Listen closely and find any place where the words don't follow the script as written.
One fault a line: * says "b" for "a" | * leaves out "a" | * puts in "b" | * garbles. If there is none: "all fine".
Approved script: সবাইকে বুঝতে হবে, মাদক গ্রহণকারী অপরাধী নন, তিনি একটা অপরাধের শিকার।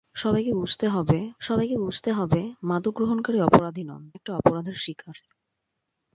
* puts in "সবাইকে বুঝতে হবে"
* leaves out "তিনি"